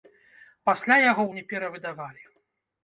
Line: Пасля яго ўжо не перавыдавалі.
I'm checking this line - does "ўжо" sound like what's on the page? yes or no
no